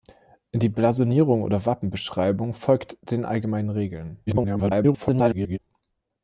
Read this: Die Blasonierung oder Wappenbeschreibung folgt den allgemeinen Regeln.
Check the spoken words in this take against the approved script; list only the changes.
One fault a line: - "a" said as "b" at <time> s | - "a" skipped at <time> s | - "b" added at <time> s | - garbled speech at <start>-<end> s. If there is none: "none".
- garbled speech at 4.3-5.6 s